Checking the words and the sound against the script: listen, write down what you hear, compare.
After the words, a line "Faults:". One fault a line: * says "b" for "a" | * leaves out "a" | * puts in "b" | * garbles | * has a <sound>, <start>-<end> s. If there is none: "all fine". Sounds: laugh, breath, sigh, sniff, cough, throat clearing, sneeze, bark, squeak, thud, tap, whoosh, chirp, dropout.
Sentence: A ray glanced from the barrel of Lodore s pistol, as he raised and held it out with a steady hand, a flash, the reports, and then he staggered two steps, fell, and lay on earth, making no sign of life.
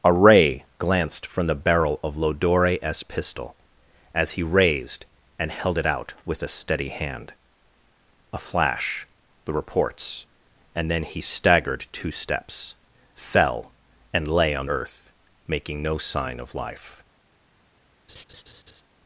A ray glanced from the barrel of Lodore s pistol, as he raised and held it out with a steady hand, a flash, the reports, and then he staggered two steps, fell, and lay on earth, making no sign of life.
Faults:
* has a laugh, 18.1-18.8 s